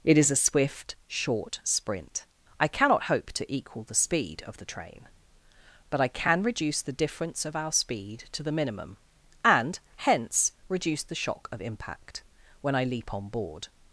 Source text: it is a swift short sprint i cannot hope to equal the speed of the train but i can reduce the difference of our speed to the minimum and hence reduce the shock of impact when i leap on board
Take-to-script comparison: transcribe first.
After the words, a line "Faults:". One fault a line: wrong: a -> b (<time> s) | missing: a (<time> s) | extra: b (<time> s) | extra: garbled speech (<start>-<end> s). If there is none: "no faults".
it is a swift short sprint i cannot hope to equal the speed of the train but i can reduce the difference of our speed to the minimum and hence reduce the shock of impact when i leap on board
Faults:
no faults